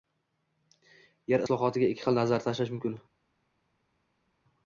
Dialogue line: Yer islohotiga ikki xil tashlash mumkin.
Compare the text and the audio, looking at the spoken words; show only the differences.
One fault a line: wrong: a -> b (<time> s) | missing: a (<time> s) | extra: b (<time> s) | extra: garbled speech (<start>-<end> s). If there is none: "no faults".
extra: nazar (2.2 s)